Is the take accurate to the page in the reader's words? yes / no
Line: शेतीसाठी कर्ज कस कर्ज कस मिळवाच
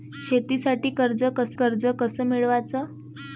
yes